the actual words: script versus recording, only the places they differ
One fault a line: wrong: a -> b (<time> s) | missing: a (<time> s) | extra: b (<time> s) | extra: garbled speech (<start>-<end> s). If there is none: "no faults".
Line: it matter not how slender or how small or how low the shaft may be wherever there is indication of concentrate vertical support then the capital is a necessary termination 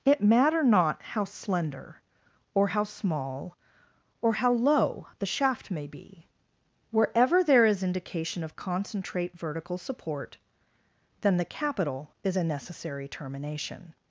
no faults